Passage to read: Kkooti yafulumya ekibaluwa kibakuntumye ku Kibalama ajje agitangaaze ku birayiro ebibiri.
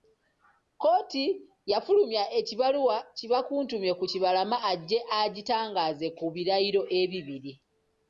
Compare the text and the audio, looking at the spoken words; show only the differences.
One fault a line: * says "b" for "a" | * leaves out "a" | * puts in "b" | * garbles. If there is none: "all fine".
all fine